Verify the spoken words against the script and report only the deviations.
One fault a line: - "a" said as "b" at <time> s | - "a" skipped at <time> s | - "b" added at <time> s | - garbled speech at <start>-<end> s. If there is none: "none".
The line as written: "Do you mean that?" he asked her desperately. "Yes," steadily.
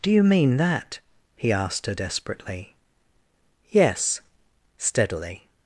none